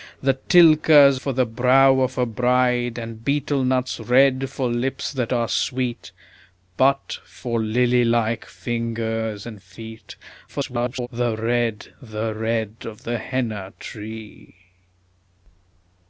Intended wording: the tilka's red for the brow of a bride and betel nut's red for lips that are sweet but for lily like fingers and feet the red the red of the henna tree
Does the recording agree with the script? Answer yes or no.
no